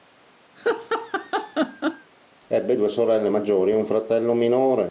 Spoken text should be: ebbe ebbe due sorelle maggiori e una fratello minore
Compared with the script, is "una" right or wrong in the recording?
wrong